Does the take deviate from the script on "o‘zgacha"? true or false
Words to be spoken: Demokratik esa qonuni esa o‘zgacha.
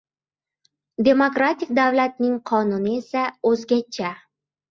false